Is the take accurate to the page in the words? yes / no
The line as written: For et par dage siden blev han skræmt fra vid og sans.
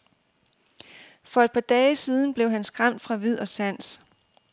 yes